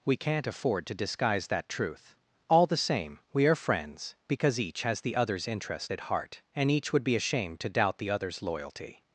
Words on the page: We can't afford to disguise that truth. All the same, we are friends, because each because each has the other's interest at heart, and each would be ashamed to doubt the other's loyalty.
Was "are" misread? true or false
false